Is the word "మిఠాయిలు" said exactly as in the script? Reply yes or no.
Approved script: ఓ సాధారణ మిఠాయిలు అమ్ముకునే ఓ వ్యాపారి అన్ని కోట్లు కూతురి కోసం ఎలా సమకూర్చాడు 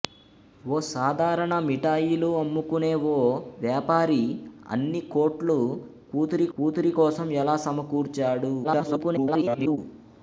yes